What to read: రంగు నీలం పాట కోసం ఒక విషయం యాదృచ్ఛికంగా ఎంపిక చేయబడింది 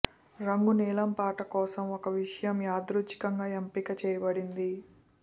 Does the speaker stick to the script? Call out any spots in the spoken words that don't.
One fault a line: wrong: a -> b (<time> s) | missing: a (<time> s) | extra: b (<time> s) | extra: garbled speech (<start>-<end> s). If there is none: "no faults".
no faults